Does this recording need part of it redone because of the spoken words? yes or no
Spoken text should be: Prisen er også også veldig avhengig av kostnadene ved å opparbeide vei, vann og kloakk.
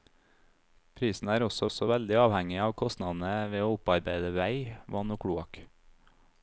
no